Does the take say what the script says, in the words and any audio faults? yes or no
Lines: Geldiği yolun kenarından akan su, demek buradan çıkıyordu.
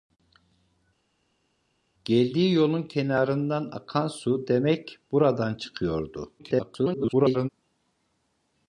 no